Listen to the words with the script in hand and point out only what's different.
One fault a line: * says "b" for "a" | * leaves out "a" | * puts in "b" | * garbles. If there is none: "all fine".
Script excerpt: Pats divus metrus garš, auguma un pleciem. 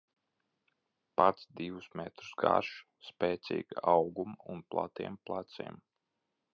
* puts in "spēcīga"
* puts in "platiem"